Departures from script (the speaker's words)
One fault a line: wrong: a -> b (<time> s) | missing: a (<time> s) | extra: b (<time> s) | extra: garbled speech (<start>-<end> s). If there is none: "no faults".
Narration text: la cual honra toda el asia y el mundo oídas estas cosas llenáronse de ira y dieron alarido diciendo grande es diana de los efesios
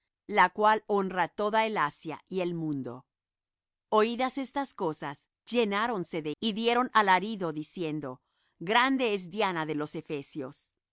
missing: ira (6.3 s)